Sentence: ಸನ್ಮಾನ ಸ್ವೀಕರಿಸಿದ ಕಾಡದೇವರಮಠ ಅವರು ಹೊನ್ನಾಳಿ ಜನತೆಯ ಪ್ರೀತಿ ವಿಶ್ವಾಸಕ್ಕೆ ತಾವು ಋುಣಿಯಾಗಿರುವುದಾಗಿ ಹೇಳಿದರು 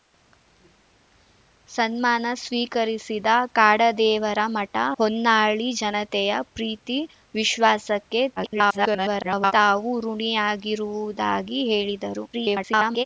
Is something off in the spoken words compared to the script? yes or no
yes